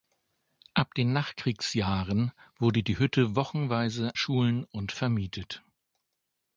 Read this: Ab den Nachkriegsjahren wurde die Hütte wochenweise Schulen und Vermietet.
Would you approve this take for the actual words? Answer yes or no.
yes